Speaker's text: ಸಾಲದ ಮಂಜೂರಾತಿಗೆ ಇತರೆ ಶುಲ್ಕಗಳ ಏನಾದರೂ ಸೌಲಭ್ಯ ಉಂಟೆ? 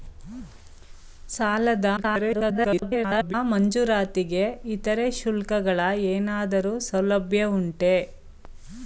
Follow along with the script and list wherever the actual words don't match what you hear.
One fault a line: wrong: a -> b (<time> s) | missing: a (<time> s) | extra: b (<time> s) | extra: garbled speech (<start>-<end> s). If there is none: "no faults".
extra: garbled speech (2.0-3.3 s)